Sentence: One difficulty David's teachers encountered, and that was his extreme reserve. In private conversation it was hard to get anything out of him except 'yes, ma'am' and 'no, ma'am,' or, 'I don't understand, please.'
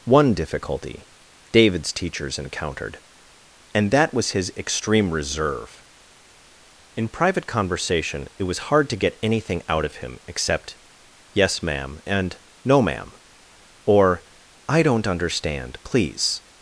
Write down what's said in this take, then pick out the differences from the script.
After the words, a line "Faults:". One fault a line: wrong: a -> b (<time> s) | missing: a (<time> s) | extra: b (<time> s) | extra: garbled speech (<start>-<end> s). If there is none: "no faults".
One difficulty David's teachers encountered, and that was his extreme reserve. In private conversation it was hard to get anything out of him except 'yes, ma'am' and 'no, ma'am,' or, 'I don't understand, please.'
Faults:
no faults